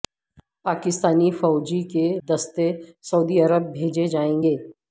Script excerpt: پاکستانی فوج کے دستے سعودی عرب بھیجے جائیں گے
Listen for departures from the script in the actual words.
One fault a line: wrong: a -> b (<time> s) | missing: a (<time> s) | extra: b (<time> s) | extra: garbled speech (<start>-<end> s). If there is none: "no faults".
no faults